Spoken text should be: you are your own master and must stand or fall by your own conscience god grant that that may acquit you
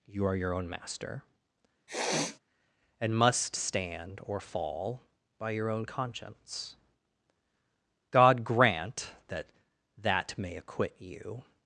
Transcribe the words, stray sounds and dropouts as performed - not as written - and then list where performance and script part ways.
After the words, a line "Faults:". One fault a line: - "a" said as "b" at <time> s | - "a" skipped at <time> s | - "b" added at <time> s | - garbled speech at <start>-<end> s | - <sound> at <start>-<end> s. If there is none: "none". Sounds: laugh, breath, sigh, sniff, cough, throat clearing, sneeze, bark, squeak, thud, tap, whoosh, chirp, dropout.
you are your own master and must stand or fall by your own conscience god grant that that may acquit you
Faults:
- sniff at 1.9-2.4 s